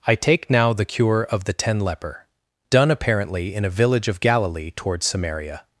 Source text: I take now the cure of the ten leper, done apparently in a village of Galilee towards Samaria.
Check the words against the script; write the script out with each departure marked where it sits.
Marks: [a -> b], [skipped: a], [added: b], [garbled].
I take now the cure of the ten leper, done apparently in a village of Galilee towards Samaria.